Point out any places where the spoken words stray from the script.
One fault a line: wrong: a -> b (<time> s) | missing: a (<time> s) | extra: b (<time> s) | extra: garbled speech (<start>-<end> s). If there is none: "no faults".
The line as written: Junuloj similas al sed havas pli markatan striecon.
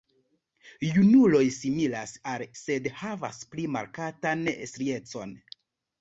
no faults